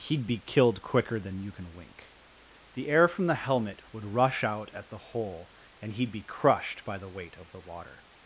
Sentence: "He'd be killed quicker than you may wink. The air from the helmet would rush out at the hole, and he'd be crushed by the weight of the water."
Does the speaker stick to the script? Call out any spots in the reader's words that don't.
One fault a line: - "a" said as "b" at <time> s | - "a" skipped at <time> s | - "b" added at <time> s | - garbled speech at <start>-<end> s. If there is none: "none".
- "may" said as "can" at 1.5 s